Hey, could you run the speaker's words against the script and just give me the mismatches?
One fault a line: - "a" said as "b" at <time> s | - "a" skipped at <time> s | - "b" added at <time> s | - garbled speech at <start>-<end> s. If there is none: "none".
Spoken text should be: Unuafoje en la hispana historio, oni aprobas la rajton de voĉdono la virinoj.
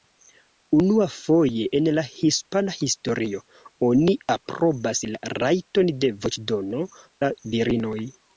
none